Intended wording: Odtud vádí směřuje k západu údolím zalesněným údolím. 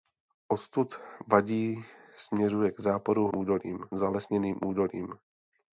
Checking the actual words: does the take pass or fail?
pass